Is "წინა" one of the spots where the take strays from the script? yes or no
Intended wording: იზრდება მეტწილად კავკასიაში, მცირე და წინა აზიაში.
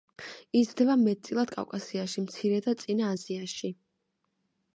no